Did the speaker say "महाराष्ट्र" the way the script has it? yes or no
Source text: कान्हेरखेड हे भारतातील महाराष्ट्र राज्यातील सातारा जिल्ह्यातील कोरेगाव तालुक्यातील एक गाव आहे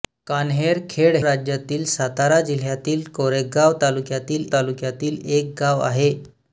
no